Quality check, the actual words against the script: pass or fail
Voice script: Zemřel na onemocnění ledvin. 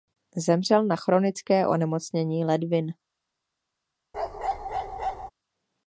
fail